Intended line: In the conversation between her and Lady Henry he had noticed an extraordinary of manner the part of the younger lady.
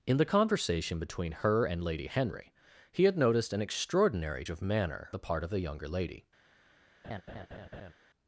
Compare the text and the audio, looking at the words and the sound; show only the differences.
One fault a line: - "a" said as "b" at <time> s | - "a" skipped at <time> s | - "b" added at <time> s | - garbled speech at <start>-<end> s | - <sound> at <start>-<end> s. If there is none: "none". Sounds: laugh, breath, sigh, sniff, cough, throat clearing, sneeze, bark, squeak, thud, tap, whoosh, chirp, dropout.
- laugh at 7.0-7.9 s